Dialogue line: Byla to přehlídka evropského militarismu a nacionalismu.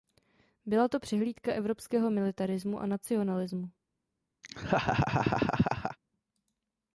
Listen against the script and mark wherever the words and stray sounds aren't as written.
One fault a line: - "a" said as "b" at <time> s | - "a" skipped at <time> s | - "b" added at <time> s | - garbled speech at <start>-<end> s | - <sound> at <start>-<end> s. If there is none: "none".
- laugh at 4.4-6.0 s